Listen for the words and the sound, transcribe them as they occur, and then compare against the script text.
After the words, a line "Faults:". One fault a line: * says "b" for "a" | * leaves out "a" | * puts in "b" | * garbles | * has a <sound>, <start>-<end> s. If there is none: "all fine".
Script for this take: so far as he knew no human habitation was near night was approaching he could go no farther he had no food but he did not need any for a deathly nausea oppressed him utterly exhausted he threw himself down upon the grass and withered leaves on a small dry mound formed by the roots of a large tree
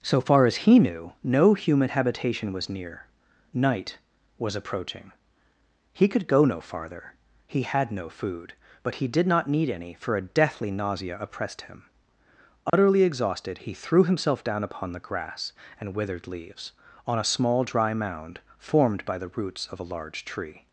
so far as he knew no human habitation was near night was approaching he could go no farther he had no food but he did not need any for a deathly nausea oppressed him utterly exhausted he threw himself down upon the grass and withered leaves on a small dry mound formed by the roots of a large tree
Faults:
* has a dropout, 12.7-12.7 s